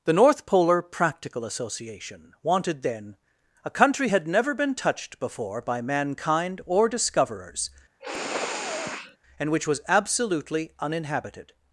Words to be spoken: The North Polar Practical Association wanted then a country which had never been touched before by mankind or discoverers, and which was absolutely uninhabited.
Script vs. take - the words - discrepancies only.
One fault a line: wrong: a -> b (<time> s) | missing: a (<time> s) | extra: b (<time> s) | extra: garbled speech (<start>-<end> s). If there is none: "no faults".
missing: which (4.1 s)